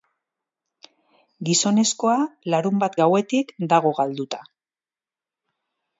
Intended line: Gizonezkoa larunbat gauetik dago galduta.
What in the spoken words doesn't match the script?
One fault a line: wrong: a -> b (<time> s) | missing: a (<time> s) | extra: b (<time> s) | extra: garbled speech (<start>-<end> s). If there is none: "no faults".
no faults